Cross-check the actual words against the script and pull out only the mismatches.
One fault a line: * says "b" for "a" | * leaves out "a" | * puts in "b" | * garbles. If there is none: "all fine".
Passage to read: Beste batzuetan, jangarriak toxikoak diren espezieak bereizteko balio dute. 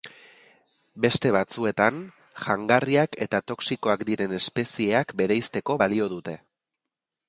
* puts in "eta"